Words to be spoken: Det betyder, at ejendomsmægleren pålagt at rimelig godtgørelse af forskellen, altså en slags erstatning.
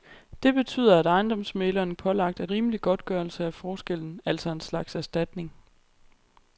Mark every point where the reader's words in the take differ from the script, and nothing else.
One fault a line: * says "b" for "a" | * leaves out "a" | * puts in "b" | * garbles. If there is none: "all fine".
all fine